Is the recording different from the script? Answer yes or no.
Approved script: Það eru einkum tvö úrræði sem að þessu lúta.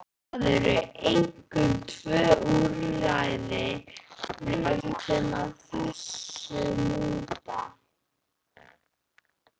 yes